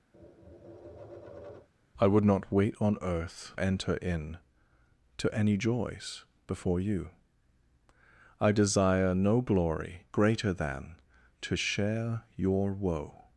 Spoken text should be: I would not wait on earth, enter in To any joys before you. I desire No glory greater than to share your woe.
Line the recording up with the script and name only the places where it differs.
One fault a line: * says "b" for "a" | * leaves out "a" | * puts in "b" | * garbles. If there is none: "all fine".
all fine